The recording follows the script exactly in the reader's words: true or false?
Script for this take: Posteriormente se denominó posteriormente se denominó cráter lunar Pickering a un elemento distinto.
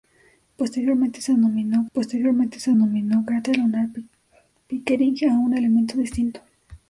true